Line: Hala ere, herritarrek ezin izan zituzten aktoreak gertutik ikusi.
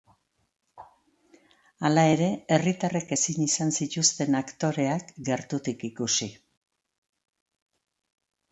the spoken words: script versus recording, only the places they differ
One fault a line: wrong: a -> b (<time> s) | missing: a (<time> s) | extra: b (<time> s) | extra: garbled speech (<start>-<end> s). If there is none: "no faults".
no faults